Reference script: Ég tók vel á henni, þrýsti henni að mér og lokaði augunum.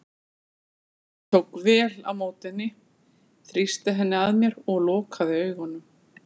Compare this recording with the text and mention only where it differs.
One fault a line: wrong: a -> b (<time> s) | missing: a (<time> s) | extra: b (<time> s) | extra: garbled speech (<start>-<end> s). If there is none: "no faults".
extra: móti (2.2 s)